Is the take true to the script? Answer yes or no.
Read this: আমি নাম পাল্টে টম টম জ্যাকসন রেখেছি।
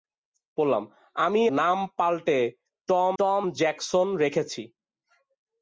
yes